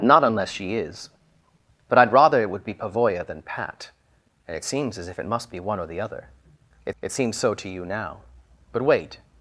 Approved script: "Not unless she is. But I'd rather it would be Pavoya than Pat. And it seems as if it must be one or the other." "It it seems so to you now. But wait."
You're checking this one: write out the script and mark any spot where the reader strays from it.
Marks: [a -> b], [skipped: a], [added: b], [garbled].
"Not unless she is. But I'd rather it would be Pavoya than Pat. And it seems as if it must be one or the other." "It it seems so to you now. But wait."